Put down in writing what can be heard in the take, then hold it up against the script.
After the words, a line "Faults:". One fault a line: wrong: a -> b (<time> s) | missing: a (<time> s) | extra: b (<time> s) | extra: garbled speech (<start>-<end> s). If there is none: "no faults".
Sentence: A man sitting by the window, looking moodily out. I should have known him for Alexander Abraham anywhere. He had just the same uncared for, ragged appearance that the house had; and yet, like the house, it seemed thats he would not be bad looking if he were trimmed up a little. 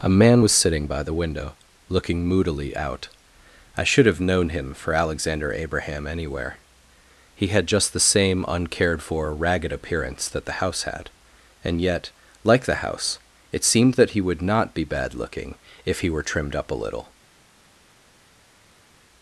A man was sitting by the window, looking moodily out. I should have known him for Alexander Abraham anywhere. He had just the same uncared for, ragged appearance that the house had; and yet, like the house, it seemed that he would not be bad looking if he were trimmed up a little.
Faults:
extra: was (0.4 s)
wrong: thats -> that (13.9 s)